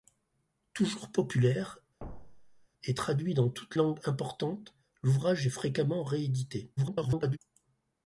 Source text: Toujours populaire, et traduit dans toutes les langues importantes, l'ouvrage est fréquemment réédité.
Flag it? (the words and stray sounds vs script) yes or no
yes